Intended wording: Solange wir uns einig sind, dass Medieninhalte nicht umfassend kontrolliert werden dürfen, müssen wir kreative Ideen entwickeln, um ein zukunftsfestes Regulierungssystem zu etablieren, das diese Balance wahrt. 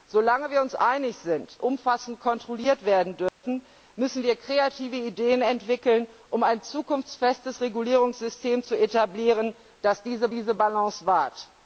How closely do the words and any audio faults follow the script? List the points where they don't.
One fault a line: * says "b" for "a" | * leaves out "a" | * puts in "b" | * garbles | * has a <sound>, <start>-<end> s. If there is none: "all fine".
* leaves out "dass Medieninhalte nicht"
* has a dropout, 3.3-3.4 s
* puts in "diese"